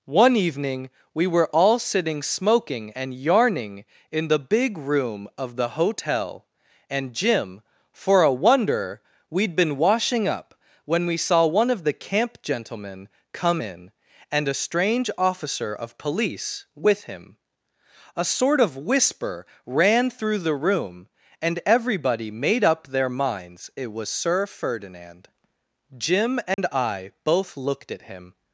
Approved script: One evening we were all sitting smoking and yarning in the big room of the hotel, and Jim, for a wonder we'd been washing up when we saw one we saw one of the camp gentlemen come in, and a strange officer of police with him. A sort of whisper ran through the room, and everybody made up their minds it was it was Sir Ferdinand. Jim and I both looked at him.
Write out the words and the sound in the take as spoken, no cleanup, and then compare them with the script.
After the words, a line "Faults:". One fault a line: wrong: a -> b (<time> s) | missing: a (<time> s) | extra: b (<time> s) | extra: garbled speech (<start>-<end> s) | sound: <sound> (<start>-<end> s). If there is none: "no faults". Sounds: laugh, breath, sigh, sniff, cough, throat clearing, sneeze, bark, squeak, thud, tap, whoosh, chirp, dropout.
One evening we were all sitting smoking and yarning in the big room of the hotel, and Jim, for a wonder we'd been washing up when we saw one of the camp gentlemen come in, and a strange officer of police with him. A sort of whisper ran through the room, and everybody made up their minds it was Sir Ferdinand. Jim and I both looked at him.
Faults:
missing: we saw one (11.7 s)
missing: it was (24.1 s)
sound: dropout (26.5-26.6 s)